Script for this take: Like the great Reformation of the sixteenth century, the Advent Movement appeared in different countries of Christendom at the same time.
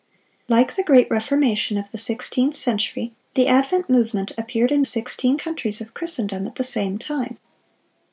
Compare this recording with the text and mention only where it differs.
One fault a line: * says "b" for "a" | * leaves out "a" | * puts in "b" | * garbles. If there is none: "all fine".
* says "sixteenth" for "different"